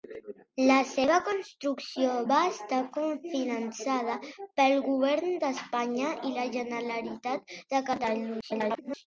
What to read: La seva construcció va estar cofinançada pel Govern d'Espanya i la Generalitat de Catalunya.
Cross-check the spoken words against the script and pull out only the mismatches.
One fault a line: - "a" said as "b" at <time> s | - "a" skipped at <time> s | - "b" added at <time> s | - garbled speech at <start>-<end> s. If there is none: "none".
- garbled speech at 8.4-9.1 s